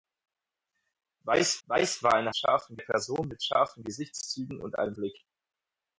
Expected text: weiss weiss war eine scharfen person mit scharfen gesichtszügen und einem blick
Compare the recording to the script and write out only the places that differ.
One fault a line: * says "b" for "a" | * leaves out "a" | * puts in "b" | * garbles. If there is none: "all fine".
all fine